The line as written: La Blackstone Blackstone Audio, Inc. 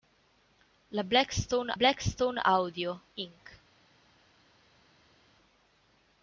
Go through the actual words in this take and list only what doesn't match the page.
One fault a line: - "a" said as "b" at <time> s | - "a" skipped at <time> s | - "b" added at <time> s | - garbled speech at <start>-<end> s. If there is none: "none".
none